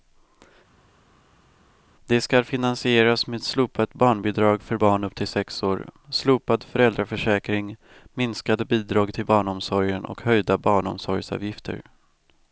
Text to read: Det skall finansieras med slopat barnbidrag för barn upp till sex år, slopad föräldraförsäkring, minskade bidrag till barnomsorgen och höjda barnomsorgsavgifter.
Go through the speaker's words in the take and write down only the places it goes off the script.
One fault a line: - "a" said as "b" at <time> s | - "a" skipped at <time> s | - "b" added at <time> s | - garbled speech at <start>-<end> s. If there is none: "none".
none